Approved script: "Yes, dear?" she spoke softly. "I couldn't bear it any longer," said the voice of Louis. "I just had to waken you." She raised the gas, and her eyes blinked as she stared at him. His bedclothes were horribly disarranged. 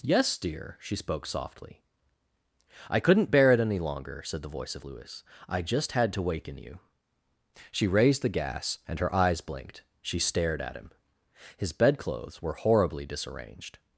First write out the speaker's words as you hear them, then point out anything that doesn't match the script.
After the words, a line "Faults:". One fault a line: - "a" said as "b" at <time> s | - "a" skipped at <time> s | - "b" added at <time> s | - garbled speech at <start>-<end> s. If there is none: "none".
"Yes, dear?" she spoke softly. "I couldn't bear it any longer," said the voice of Louis. "I just had to waken you." She raised the gas, and her eyes blinked she stared at him. His bedclothes were horribly disarranged.
Faults:
- "as" skipped at 9.8 s